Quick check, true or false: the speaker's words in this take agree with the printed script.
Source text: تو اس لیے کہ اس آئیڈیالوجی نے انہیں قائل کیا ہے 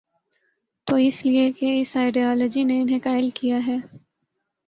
true